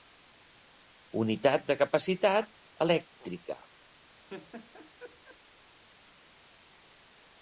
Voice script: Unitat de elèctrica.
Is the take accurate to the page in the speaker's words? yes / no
no